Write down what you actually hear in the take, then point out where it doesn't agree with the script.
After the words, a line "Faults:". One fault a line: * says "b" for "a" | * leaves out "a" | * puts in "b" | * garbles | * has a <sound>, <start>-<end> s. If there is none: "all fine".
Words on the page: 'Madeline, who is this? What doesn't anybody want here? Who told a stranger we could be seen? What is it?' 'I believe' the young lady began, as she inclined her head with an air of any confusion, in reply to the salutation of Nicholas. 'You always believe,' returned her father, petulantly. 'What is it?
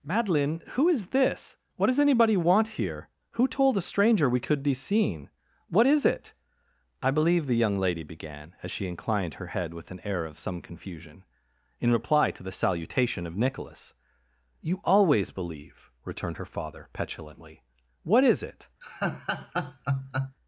'Madeline, who is this? What does anybody want here? Who told a stranger we could be seen? What is it?' 'I believe' the young lady began, as she inclined her head with an air of some confusion, in reply to the salutation of Nicholas. 'You always believe,' returned her father, petulantly. 'What is it?
Faults:
* says "does" for "doesn't"
* says "some" for "any"
* has a laugh, 18.8-20.4 s